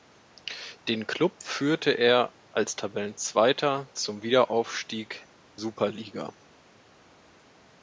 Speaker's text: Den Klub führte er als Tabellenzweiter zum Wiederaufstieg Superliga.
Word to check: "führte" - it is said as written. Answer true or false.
true